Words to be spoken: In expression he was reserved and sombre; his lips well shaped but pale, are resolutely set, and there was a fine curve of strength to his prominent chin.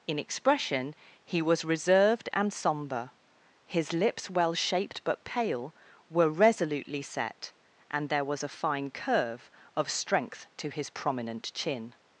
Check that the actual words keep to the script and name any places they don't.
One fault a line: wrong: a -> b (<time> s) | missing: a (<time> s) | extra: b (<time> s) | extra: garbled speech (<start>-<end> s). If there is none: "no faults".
wrong: are -> were (6.1 s)